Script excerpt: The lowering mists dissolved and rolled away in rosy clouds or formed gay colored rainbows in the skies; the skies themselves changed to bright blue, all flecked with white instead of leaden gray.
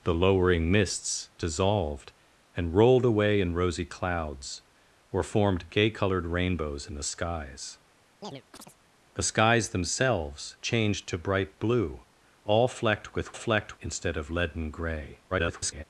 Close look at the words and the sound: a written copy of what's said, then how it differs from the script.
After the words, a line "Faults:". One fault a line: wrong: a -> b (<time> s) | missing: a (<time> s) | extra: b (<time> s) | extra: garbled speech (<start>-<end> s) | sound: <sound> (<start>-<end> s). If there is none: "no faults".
The lowering mists dissolved and rolled away in rosy clouds or formed gay colored rainbows in the skies; the skies themselves changed to bright blue, all flecked with flecked instead of leaden gray. [garbled]
Faults:
sound: chirp (8.2-8.8 s)
wrong: white -> flecked (13.3 s)
extra: garbled speech (15.3-15.8 s)